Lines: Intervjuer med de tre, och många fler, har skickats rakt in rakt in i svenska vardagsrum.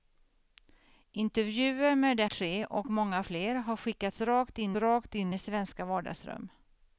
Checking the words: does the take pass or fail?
pass